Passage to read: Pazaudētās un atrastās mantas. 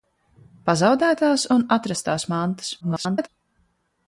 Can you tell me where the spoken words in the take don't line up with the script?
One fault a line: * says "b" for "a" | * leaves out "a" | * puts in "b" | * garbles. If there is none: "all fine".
* garbles